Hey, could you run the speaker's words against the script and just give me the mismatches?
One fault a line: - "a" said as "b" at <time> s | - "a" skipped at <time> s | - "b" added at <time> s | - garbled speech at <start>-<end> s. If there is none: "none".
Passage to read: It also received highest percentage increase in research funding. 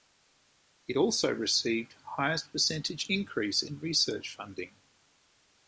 none